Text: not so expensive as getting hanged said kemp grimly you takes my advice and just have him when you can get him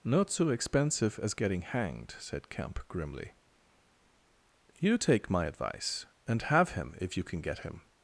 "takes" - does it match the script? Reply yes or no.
no